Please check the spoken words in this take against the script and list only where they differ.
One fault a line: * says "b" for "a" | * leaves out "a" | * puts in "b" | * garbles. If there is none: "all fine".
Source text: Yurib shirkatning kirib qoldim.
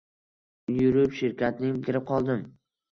all fine